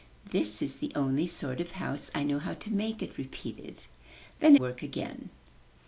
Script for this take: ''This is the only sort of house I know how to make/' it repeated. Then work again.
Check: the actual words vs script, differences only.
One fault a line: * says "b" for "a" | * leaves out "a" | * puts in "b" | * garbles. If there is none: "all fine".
all fine